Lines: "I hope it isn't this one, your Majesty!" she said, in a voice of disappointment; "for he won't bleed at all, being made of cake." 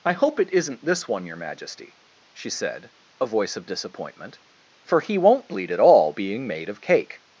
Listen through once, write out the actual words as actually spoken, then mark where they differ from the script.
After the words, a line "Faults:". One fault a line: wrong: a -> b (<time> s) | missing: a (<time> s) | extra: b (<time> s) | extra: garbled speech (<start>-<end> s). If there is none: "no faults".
"I hope it isn't this one, your Majesty!" she said, a voice of disappointment; "for he won't bleed at all, being made of cake."
Faults:
missing: in (2.9 s)